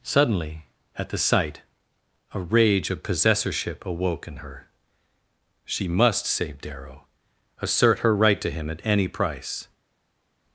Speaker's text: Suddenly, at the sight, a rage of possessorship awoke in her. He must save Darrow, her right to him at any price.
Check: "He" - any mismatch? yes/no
yes